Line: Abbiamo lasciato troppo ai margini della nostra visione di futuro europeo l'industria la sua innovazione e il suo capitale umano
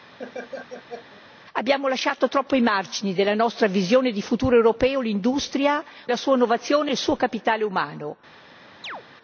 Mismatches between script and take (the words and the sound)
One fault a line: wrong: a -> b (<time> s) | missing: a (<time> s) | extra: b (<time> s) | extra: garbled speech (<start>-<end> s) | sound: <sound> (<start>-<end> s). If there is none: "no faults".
sound: laugh (0.2-1.2 s)
sound: chirp (8.8-9.0 s)